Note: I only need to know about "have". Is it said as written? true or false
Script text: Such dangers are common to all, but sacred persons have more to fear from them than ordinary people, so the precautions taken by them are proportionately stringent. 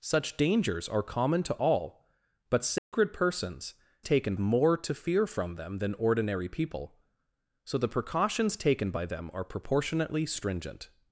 false